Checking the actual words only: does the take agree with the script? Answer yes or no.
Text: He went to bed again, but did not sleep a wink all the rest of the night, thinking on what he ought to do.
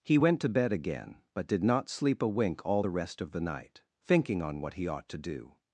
yes